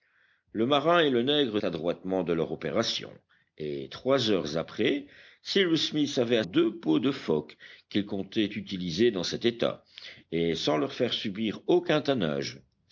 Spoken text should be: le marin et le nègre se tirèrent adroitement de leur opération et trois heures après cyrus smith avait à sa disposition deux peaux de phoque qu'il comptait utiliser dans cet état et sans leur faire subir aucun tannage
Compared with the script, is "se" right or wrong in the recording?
wrong